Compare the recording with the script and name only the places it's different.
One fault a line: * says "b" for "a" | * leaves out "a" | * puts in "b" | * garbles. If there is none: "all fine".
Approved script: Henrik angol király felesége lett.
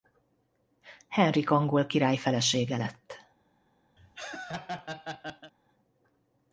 all fine